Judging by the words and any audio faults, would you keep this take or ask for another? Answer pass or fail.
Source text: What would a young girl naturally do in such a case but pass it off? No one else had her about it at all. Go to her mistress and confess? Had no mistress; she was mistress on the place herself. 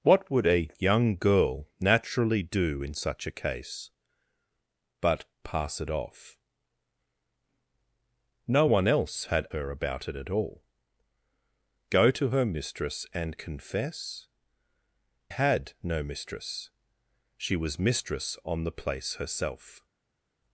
pass